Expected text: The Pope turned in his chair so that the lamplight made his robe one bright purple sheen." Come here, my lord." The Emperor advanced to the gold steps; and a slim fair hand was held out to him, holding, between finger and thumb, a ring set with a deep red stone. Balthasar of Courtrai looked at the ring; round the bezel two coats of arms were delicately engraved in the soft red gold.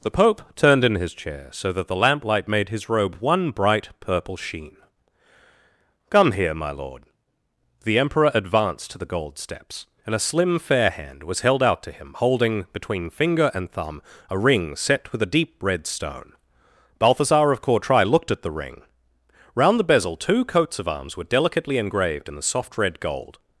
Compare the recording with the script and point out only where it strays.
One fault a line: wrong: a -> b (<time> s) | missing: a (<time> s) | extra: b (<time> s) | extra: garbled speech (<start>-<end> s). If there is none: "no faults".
no faults